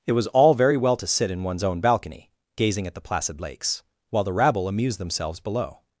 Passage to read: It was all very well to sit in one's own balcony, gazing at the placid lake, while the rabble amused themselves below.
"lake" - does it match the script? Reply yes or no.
no